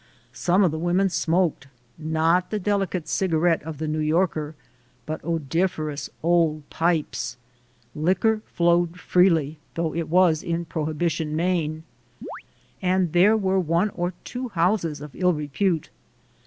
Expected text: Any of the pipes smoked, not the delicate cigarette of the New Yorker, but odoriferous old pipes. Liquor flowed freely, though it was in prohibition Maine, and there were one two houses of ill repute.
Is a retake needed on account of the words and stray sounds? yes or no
yes